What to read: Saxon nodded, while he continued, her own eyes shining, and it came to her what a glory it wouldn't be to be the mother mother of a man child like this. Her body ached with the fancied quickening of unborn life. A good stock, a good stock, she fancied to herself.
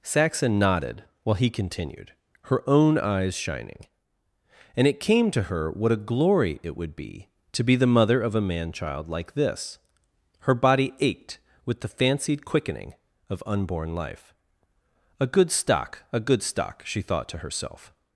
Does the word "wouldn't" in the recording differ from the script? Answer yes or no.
yes